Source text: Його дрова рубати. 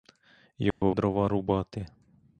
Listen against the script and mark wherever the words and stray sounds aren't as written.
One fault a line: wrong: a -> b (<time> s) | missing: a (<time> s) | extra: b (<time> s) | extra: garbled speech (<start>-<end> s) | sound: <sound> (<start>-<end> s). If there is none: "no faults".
sound: dropout (0.7-0.8 s)